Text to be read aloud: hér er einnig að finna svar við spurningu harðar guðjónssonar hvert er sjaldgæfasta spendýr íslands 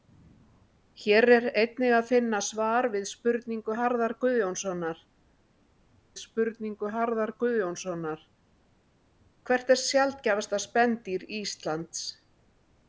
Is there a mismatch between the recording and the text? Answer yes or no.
yes